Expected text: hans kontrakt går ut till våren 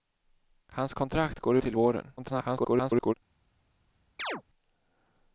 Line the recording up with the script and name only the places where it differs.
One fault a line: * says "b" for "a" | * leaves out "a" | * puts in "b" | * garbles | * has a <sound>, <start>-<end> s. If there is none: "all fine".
* leaves out "ut"
* garbles
* has a chirp, 4.2-4.4 s